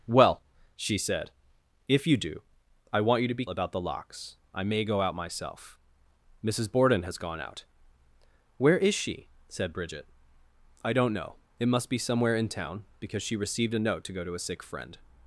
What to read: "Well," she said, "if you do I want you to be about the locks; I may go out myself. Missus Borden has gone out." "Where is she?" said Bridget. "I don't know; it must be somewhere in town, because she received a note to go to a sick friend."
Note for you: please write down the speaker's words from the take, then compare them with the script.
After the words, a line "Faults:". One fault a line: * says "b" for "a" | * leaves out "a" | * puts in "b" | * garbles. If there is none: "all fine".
"Well," she said, "if you do I want you to be about the locks; I may go out myself. Missus Borden has gone out." "Where is she?" said Bridget. "I don't know; it must be somewhere in town, because she received a note to go to a sick friend."
Faults:
all fine